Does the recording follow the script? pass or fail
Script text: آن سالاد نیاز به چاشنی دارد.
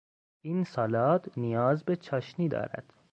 fail